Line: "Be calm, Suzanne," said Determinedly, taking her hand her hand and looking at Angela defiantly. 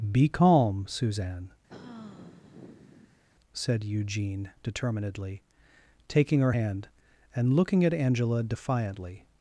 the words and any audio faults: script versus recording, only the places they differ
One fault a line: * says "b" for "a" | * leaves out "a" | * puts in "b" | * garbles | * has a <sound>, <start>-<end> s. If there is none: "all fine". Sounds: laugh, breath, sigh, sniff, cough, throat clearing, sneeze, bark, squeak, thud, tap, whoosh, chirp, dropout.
* has a sigh, 1.7-3.2 s
* puts in "Eugene"
* leaves out "her hand"